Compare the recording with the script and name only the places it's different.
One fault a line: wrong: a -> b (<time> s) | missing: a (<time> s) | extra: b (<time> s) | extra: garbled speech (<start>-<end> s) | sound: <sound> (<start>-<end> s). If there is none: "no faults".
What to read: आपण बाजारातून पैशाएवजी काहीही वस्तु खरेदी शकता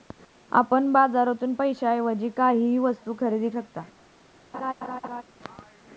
sound: laugh (4.5-5.2 s)